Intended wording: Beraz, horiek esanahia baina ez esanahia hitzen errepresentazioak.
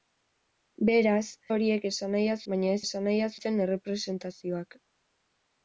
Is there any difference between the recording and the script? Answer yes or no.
no